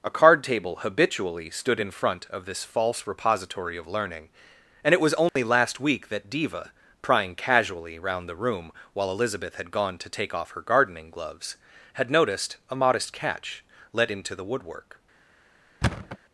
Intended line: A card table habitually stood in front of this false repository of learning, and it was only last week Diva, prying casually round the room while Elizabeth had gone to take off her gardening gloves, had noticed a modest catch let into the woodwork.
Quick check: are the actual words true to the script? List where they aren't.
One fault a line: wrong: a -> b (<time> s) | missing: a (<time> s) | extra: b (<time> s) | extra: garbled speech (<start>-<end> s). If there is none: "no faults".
extra: that (6.1 s)